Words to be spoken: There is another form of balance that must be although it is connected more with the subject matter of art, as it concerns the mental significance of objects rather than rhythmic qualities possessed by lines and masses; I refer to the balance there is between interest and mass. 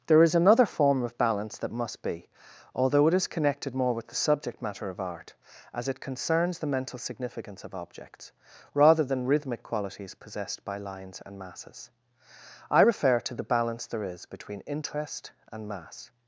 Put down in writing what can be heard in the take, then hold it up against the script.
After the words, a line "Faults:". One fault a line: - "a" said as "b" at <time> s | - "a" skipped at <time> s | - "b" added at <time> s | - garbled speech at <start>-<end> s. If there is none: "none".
There is another form of balance that must be although it is connected more with the subject matter of art, as it concerns the mental significance of objects rather than rhythmic qualities possessed by lines and masses; I refer to the balance there is between interest and mass.
Faults:
none